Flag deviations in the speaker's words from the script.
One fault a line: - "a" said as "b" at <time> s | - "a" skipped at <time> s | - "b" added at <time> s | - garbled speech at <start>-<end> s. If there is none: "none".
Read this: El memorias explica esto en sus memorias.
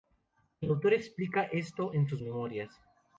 - "memorias" said as "autor" at 0.7 s